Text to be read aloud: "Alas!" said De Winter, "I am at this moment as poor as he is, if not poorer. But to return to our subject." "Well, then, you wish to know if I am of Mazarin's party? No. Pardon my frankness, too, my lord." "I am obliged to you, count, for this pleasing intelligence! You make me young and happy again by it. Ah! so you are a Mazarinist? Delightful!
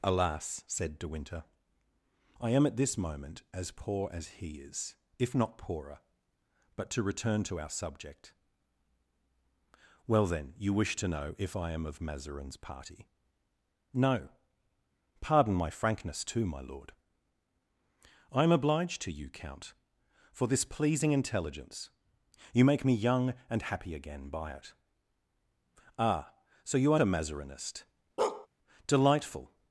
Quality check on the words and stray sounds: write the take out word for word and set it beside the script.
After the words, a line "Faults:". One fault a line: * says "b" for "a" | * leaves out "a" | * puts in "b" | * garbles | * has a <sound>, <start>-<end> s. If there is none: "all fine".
"Alas!" said De Winter, "I am at this moment as poor as he is, if not poorer. But to return to our subject." "Well, then, you wish to know if I am of Mazarin's party? No. Pardon my frankness, too, my lord." "I am obliged to you, count, for this pleasing intelligence! You make me young and happy again by it. Ah! so you are a Mazarinist? Delightful!
Faults:
* has a bark, 28.2-28.5 s